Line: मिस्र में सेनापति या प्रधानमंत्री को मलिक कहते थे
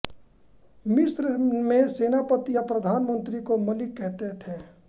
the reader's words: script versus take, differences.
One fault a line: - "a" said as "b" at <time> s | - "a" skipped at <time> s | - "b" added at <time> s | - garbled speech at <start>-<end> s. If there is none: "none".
none